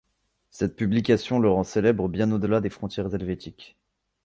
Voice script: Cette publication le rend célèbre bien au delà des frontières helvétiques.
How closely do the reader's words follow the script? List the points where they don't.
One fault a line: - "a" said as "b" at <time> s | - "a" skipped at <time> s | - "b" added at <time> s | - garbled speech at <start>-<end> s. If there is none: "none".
none